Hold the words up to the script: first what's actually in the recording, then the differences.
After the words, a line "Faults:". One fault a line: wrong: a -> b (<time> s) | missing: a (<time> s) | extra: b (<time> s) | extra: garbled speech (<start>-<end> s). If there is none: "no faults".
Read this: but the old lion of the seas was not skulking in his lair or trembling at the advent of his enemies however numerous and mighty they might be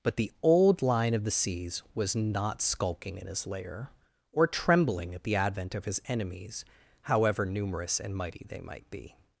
but the old lion of the seas was not skulking in his lair or trembling at the advent of his enemies however numerous and mighty they might be
Faults:
no faults